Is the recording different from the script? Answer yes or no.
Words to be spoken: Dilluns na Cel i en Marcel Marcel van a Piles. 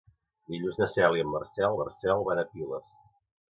no